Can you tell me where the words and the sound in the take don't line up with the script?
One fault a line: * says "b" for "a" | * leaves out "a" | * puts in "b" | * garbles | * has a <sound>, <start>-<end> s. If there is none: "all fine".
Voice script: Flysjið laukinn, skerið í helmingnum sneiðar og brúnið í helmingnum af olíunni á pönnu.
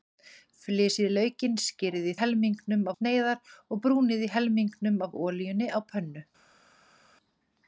all fine